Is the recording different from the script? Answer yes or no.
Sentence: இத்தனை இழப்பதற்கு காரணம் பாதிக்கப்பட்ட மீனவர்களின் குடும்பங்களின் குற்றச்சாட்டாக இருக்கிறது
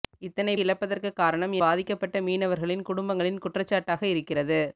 no